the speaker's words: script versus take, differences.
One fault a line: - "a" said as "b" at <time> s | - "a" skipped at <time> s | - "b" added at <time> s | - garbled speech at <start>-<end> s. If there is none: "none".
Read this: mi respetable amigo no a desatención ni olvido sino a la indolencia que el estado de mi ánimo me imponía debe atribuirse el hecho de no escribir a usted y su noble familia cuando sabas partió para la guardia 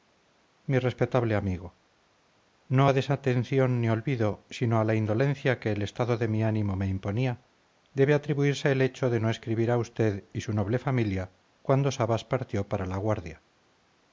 none